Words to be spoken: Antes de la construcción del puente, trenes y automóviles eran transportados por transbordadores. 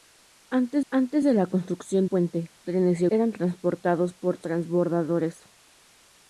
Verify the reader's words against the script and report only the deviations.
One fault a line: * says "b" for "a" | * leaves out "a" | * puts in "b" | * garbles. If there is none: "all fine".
* puts in "antes"
* leaves out "del"
* leaves out "automóviles"